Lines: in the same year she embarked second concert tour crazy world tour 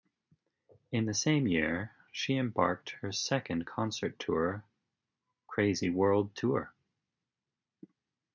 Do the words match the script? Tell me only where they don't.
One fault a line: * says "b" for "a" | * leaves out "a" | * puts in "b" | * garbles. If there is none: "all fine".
* puts in "her"